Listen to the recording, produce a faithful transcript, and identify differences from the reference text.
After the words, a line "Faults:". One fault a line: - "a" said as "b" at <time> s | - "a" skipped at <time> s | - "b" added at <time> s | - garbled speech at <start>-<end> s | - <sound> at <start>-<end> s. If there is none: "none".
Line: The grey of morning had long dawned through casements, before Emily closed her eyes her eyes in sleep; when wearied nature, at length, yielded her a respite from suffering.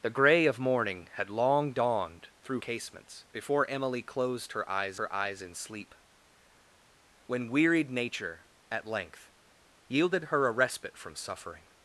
The grey of morning had long dawned through casements, before Emily closed her eyes her eyes in sleep; when wearied nature, at length, yielded her a respite from suffering.
Faults:
none